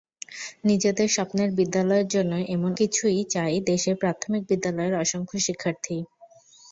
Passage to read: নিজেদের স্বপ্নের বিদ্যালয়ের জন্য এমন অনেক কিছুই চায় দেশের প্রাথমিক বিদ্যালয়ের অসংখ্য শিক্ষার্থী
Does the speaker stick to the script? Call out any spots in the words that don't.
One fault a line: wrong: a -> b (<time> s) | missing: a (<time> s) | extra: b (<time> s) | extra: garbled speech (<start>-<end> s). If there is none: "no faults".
missing: অনেক (2.7 s)